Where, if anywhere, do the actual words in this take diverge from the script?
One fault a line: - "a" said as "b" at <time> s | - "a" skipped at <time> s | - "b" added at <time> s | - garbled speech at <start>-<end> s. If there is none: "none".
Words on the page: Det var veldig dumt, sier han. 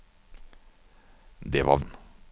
- "veldig dumt sier" skipped at 1.8 s